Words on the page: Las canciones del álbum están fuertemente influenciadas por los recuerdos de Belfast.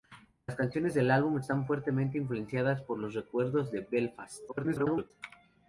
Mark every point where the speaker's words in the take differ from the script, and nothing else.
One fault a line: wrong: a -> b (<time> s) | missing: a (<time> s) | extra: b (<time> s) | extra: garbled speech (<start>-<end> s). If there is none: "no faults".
extra: garbled speech (4.5-5.1 s)